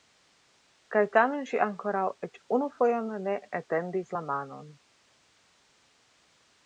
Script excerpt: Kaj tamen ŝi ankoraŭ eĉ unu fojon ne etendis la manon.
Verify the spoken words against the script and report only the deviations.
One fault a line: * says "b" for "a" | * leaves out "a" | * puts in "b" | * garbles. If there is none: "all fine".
all fine